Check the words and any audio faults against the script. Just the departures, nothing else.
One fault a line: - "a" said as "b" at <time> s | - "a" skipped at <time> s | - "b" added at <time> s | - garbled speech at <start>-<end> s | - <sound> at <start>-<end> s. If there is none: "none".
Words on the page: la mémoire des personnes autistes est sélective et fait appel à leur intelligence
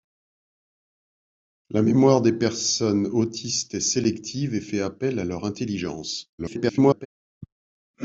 - garbled speech at 6.4-7.1 s